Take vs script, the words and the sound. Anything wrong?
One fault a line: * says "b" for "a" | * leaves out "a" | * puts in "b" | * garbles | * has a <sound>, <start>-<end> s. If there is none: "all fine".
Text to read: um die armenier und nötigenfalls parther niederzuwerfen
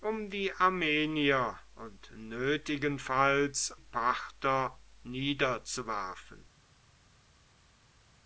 all fine